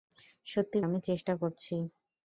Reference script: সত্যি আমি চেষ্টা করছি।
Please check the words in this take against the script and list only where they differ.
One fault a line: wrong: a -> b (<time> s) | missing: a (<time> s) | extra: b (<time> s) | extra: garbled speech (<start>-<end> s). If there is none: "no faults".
no faults